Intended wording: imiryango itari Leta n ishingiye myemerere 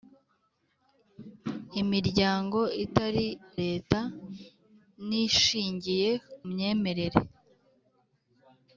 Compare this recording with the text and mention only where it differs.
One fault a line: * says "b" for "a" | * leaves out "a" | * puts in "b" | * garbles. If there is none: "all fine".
all fine